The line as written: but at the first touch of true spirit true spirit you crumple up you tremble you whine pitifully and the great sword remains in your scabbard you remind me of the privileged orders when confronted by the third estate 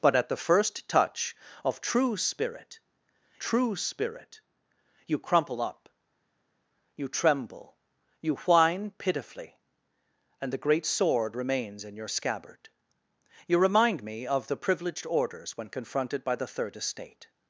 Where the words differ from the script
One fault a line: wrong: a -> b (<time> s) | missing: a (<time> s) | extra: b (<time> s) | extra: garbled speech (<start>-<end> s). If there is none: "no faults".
no faults